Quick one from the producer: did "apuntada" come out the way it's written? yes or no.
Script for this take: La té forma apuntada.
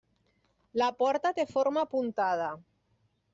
yes